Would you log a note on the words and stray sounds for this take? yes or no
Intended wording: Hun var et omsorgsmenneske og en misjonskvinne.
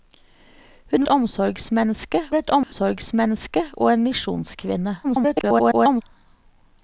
yes